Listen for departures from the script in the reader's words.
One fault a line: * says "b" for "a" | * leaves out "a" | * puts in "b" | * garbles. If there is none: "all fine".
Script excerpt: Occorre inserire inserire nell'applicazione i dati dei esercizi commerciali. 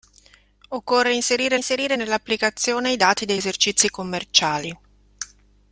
all fine